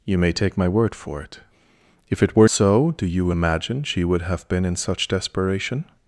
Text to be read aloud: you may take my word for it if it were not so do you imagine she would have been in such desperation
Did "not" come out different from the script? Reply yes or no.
yes